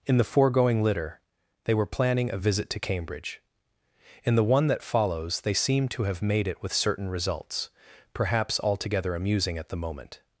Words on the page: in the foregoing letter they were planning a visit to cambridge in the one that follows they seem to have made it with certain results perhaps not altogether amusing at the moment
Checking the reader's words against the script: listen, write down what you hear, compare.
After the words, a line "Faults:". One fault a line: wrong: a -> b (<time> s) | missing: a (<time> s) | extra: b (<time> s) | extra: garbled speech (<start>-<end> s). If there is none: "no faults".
in the foregoing litter they were planning a visit to cambridge in the one that follows they seem to have made it with certain results perhaps altogether amusing at the moment
Faults:
wrong: letter -> litter (0.8 s)
missing: not (8.6 s)